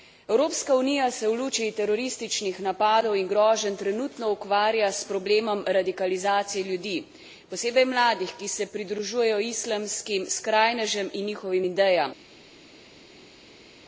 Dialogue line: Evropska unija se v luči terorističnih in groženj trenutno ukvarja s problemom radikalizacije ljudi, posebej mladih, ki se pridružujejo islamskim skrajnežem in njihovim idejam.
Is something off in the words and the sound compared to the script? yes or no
yes